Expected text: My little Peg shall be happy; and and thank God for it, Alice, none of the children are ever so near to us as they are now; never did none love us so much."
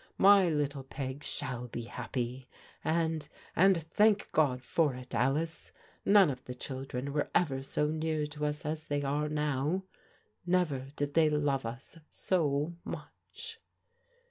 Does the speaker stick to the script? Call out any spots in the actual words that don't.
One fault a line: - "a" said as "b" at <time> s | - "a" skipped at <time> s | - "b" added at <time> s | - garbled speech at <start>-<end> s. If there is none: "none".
- "are" said as "were" at 7.1 s
- "none" said as "they" at 11.1 s